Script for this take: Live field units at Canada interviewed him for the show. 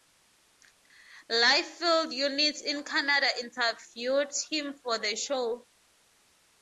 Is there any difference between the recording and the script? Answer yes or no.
yes